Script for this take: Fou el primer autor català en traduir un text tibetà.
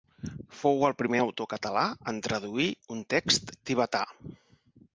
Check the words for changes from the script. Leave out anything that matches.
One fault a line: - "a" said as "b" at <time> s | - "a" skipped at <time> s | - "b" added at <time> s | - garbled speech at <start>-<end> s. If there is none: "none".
none